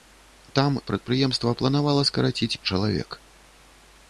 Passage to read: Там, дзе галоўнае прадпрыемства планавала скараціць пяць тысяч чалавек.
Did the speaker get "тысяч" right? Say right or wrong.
wrong